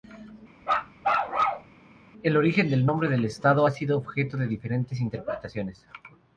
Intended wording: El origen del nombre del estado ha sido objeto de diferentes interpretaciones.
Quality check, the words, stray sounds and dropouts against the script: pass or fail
fail